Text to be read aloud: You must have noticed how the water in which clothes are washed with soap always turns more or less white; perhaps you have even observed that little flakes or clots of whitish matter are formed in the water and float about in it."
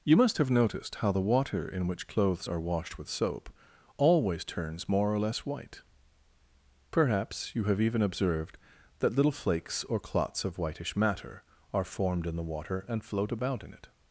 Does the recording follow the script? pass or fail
pass